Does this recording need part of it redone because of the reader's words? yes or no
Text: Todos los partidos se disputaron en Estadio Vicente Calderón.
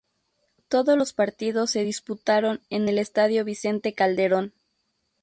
yes